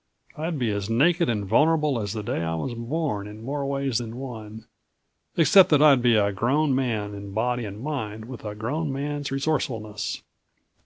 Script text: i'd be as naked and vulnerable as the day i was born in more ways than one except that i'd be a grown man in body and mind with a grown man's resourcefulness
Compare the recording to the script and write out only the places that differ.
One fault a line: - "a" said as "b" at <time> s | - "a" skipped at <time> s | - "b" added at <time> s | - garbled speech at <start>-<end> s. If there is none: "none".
none